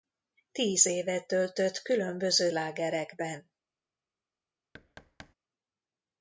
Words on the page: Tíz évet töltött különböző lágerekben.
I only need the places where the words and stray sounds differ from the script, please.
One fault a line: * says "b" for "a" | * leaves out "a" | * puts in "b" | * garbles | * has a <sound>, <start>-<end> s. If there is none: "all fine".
* has a thud, 4.7-5.3 s